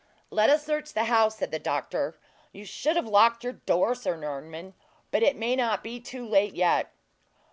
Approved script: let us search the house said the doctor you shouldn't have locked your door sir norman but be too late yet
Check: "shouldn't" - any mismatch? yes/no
yes